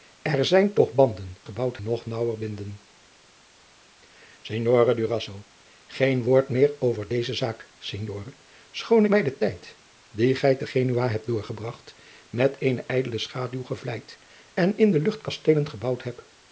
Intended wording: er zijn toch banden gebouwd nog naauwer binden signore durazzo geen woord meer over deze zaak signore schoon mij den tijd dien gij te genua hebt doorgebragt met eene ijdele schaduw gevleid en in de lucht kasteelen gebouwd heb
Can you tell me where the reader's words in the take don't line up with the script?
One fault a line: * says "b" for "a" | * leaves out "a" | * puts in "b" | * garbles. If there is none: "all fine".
all fine